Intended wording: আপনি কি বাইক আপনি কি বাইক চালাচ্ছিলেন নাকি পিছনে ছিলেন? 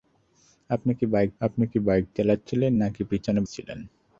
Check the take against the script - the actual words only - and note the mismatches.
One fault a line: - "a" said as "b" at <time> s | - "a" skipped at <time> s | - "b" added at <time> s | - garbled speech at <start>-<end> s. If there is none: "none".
none